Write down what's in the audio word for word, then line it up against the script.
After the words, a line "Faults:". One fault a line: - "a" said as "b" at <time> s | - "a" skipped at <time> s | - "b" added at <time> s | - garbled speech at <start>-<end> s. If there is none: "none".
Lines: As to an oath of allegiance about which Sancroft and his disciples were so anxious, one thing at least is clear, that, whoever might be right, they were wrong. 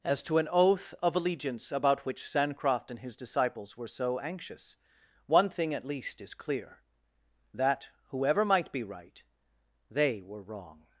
As to an oath of allegiance about which Sancroft and his disciples were so anxious, one thing at least is clear, that, whoever might be right, they were wrong.
Faults:
none